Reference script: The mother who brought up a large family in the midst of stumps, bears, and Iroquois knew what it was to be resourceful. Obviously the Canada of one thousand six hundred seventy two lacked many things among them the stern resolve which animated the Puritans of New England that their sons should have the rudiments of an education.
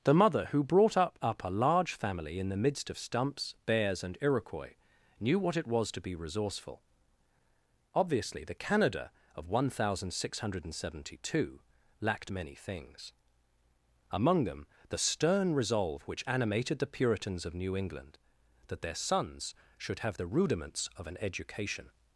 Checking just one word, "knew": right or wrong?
right